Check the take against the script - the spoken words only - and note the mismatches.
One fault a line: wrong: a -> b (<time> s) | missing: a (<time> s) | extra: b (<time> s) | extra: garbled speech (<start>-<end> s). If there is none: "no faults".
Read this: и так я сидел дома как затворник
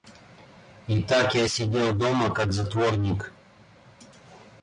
no faults